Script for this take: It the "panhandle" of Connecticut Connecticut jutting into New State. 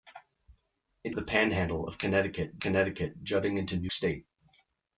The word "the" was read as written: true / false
true